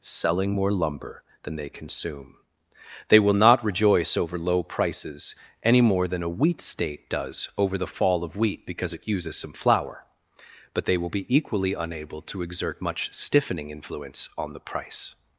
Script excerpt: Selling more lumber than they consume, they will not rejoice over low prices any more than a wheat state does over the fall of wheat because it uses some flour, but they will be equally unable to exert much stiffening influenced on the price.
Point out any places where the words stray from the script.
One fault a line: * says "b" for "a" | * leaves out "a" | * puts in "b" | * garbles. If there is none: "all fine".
* says "influence" for "influenced"